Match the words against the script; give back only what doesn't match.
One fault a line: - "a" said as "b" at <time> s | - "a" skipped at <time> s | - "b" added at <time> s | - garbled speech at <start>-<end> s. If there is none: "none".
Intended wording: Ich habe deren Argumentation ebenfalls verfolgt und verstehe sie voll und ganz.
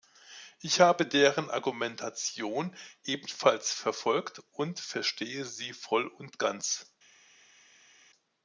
none